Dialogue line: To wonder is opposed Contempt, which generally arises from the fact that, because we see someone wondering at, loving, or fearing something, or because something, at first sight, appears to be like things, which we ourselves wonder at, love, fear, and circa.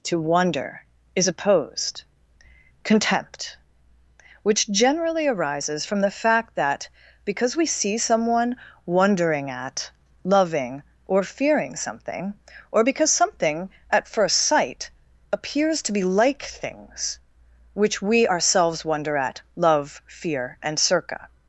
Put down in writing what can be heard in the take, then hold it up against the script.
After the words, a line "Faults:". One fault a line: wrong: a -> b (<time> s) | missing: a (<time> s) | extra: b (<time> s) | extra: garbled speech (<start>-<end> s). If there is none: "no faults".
To wonder is opposed Contempt, which generally arises from the fact that, because we see someone wondering at, loving, or fearing something, or because something, at first sight, appears to be like things, which we ourselves wonder at, love, fear, and circa.
Faults:
no faults